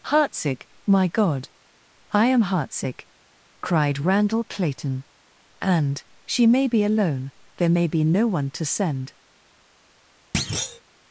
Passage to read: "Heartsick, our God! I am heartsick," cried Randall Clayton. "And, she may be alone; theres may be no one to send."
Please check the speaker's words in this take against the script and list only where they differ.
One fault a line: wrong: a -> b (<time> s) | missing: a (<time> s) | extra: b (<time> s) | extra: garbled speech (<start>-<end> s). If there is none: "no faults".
wrong: our -> my (0.8 s)
wrong: theres -> there (7.6 s)